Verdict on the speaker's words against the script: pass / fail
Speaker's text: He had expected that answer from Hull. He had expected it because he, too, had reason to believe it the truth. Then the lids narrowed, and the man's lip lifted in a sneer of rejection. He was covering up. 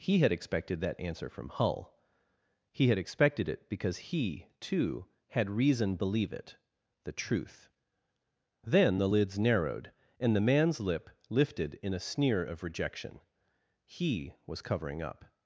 fail